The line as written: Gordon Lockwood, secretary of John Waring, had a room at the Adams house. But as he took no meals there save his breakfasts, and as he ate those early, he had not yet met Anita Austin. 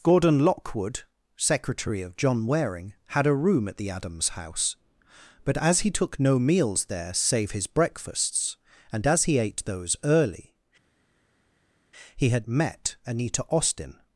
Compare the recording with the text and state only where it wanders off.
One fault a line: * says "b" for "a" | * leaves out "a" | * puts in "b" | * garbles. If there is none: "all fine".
* leaves out "not yet"